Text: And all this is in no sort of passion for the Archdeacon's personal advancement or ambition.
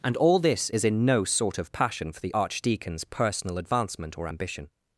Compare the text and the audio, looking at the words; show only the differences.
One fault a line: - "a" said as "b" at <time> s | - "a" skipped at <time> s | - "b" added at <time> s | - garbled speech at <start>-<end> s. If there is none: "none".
none